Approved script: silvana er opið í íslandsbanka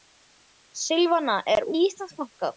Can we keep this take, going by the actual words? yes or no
no